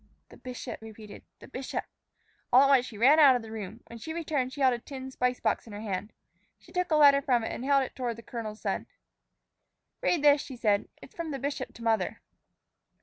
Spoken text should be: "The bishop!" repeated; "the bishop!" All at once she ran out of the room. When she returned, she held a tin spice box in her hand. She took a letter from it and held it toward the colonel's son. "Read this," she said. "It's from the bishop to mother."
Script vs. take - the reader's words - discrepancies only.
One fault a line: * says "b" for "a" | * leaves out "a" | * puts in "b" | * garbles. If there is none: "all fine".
all fine